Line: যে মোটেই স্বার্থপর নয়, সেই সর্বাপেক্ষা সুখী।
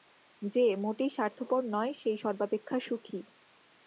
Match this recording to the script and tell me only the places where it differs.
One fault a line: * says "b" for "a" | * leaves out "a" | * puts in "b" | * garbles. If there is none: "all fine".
all fine